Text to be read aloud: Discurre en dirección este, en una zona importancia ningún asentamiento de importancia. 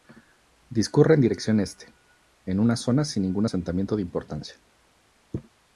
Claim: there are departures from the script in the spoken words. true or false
true